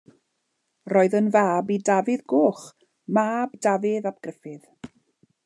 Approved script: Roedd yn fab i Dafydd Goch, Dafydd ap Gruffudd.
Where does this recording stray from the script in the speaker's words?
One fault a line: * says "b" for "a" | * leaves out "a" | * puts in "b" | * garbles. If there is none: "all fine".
* puts in "mab"